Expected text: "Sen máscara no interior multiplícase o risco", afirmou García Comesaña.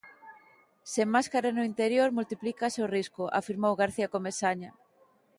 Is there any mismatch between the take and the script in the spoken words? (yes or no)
no